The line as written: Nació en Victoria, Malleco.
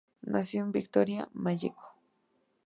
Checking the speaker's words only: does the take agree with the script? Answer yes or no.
yes